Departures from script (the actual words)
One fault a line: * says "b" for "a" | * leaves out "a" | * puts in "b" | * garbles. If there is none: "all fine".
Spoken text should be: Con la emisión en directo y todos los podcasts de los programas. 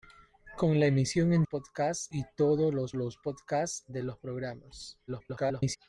* says "podcasts" for "directo"
* puts in "los"
* garbles